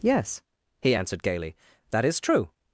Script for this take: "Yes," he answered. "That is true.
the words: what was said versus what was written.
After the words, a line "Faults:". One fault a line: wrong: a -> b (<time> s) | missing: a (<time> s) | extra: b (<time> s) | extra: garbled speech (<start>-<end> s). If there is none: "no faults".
"Yes," he answered gaily. "That is true.
Faults:
extra: gaily (1.2 s)